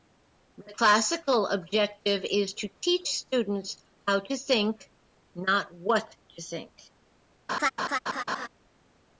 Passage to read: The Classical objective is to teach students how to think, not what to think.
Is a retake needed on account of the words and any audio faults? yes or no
yes